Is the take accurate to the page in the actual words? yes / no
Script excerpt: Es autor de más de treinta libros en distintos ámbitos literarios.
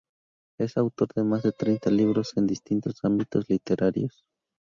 yes